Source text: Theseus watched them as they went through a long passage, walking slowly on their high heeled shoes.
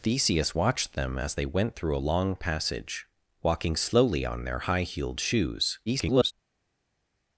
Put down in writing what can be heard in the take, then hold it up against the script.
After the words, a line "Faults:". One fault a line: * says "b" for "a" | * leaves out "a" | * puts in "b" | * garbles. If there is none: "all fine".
Theseus watched them as they went through a long passage, walking slowly on their high heeled shoes. [garbled]
Faults:
* garbles